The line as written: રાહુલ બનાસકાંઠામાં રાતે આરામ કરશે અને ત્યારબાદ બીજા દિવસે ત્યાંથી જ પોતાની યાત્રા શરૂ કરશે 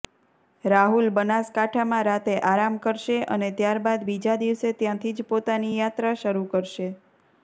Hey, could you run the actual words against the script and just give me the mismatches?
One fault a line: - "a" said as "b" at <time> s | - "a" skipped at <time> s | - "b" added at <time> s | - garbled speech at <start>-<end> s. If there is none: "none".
none